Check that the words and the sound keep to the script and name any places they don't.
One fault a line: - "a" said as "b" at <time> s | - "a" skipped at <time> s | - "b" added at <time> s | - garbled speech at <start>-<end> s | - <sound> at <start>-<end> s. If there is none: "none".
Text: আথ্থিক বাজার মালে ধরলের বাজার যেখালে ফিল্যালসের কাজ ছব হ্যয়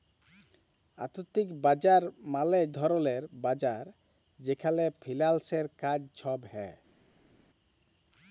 none